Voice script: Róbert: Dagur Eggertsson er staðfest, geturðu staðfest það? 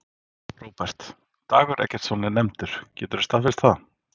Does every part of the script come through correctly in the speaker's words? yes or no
no